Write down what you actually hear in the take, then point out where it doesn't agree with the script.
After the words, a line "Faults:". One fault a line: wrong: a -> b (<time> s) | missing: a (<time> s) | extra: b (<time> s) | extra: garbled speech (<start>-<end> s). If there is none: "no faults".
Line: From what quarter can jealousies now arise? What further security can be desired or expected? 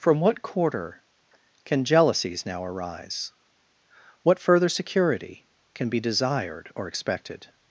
From what quarter can jealousies now arise? What further security can be desired or expected?
Faults:
no faults